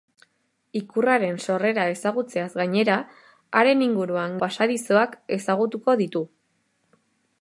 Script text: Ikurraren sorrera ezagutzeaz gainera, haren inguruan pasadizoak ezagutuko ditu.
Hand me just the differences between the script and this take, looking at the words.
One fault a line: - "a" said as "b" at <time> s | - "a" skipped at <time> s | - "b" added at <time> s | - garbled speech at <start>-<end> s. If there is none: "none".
none